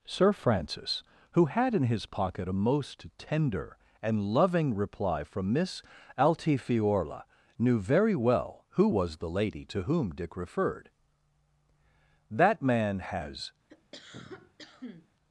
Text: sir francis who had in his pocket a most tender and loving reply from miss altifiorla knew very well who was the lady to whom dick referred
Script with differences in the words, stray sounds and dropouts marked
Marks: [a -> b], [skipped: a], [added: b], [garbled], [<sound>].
sir francis who had in his pocket a most tender and loving reply from miss altifiorla knew very well who was the lady to whom dick referred [added: that man has] [cough]